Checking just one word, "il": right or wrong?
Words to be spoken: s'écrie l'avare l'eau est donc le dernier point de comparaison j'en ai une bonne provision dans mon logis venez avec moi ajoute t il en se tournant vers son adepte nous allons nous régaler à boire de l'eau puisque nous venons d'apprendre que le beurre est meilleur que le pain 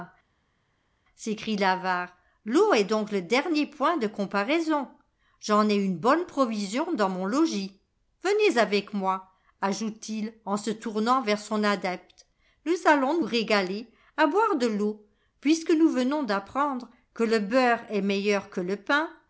right